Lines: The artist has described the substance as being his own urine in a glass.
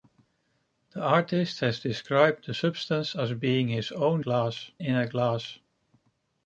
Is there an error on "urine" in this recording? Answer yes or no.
yes